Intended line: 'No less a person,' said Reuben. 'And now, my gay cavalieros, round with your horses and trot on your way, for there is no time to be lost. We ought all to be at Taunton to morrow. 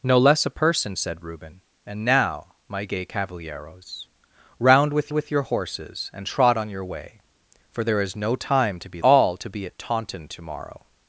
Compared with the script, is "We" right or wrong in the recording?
wrong